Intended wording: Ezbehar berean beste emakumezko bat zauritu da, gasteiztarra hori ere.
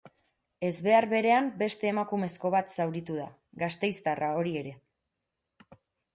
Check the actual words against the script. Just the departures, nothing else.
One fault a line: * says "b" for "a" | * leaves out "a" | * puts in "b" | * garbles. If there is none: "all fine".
all fine